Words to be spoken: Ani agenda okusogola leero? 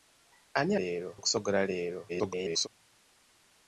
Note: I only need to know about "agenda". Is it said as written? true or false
false